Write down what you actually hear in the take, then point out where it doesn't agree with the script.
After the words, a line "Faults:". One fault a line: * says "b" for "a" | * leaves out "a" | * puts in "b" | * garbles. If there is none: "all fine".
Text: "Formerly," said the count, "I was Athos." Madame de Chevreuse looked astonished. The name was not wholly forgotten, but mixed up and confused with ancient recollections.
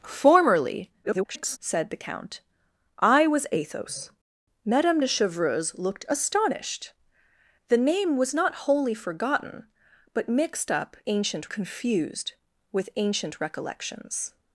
"Formerly," [garbled] said the count, "I was Athos." Madame de Chevreuse looked astonished. The name was not wholly forgotten, but mixed up ancient confused with ancient recollections.
Faults:
* garbles
* says "ancient" for "and"